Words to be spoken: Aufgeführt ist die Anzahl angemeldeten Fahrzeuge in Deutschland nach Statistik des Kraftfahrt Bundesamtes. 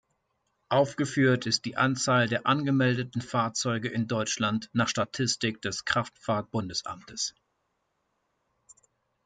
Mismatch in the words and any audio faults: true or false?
true